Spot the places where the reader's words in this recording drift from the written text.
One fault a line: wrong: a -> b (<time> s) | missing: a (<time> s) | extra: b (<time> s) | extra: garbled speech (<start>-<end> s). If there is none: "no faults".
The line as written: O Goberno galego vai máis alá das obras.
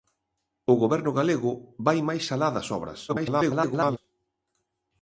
extra: garbled speech (3.1-4.0 s)